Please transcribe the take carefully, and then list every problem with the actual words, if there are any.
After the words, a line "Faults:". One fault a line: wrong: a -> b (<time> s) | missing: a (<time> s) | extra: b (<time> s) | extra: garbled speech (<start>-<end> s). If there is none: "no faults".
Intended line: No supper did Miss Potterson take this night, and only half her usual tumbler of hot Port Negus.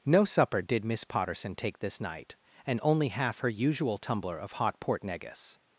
No supper did Miss Potterson take this night, and only half her usual tumbler of hot Port Negus.
Faults:
no faults